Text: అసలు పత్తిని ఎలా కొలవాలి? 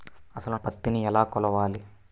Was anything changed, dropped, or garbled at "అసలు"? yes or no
no